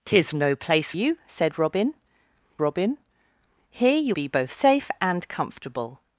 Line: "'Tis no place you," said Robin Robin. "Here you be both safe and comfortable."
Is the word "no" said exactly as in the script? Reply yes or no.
yes